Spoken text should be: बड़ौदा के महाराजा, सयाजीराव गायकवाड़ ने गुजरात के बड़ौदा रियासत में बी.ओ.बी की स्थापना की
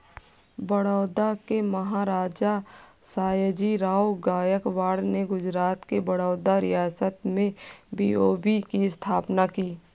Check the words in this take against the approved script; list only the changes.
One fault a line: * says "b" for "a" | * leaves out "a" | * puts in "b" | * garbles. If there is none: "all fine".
all fine